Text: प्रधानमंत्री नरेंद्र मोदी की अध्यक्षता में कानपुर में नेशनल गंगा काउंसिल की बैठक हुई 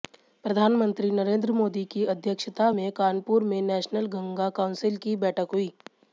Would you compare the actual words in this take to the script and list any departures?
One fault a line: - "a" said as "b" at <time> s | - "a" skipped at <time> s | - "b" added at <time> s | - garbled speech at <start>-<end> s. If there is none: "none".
none